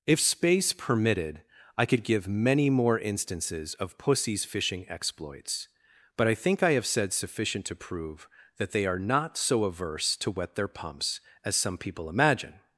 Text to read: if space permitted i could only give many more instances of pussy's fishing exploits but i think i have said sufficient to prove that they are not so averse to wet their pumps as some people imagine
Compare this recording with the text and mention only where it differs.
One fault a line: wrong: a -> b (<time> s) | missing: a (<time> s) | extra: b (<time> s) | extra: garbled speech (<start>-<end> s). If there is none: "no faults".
missing: only (2.0 s)